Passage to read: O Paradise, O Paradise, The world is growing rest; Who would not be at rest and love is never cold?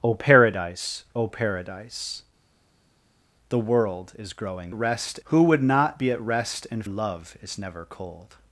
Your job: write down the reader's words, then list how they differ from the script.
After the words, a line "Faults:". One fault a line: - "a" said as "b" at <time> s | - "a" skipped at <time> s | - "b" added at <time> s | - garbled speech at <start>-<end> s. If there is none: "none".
O Paradise, O Paradise, The world is growing rest; Who would not be at rest and love is never cold?
Faults:
none